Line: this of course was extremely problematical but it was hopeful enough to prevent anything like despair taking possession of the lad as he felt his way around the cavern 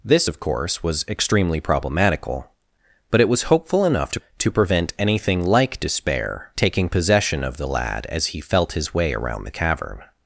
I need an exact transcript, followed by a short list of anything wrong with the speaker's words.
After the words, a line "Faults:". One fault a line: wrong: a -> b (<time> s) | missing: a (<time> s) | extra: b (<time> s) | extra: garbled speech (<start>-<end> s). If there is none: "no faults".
this of course was extremely problematical but it was hopeful enough to to prevent anything like despair taking possession of the lad as he felt his way around the cavern
Faults:
extra: to (4.4 s)